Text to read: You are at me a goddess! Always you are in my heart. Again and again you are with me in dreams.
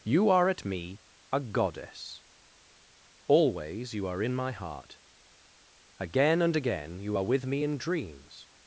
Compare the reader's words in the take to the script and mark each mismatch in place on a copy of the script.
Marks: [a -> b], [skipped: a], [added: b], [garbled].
You are at me a goddess! Always you are in my heart. Again and again you are with me in dreams.